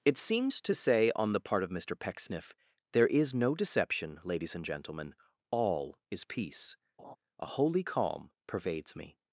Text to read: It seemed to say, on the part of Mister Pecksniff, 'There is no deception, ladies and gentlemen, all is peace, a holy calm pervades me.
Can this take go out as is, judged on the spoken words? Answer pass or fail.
pass